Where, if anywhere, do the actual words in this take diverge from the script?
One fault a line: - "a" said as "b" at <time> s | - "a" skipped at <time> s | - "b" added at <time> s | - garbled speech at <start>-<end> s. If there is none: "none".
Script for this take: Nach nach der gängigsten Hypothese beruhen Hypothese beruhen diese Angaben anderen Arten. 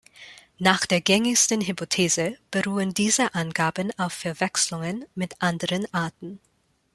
- "nach" skipped at 0.9 s
- "Hypothese beruhen diese Angaben" said as "diese Angaben auf Verwechslungen mit" at 3.0 s